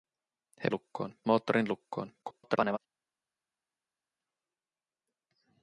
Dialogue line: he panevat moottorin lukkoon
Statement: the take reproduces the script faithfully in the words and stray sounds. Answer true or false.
false